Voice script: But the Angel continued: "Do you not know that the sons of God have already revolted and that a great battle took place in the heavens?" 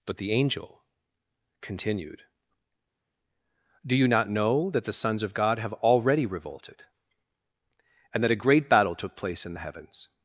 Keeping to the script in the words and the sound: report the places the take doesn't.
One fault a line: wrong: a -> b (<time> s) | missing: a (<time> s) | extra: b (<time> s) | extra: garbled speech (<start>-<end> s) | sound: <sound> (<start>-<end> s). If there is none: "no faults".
no faults